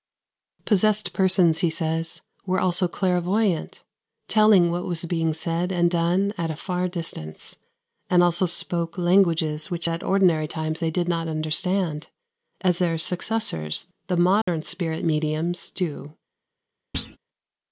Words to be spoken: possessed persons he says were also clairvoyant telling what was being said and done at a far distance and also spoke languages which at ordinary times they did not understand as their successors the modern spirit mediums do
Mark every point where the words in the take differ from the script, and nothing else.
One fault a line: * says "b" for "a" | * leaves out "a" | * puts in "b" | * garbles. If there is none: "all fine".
all fine